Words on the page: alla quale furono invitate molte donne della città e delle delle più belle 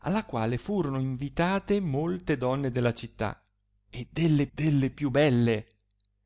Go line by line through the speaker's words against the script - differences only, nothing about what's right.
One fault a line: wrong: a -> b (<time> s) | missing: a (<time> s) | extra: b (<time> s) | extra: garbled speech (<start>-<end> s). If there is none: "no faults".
no faults